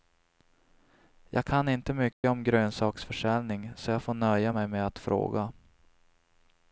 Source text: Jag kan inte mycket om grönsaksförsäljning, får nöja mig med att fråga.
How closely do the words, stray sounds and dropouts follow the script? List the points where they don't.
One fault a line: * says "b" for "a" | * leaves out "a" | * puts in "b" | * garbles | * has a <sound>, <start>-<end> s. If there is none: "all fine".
* has a dropout, 2.1-2.2 s
* puts in "så jag"